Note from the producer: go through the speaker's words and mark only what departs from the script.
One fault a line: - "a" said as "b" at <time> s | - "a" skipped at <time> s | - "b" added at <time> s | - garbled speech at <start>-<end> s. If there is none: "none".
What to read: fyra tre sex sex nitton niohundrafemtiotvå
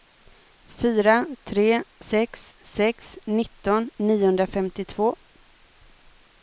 none